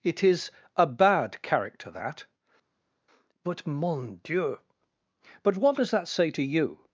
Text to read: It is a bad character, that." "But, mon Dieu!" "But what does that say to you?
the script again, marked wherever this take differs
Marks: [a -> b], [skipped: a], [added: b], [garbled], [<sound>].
It is a bad character, that." "But, mon Dieu!" "But what does that say to you?